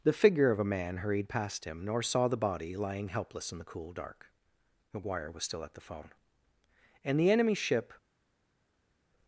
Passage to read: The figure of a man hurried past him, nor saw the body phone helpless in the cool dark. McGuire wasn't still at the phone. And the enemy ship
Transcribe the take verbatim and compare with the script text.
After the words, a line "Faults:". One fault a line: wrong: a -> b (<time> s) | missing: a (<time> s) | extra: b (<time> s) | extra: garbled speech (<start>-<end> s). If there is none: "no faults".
The figure of a man hurried past him, nor saw the body lying helpless in the cool dark. McGuire was still at the phone. And the enemy ship
Faults:
wrong: phone -> lying (2.8 s)
wrong: wasn't -> was (5.3 s)